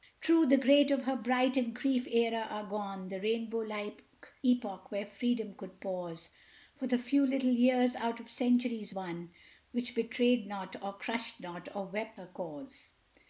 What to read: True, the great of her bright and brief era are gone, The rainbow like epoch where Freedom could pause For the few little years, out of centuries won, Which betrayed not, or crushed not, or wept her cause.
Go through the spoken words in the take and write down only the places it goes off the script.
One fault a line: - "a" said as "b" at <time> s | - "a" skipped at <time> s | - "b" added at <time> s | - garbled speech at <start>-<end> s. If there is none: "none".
none